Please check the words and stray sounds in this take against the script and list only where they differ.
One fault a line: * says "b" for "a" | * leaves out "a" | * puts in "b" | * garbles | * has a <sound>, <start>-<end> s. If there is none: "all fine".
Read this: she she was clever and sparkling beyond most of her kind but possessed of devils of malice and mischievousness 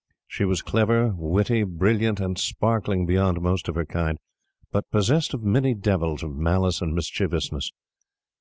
* leaves out "she"
* puts in "witty brilliant"
* puts in "many"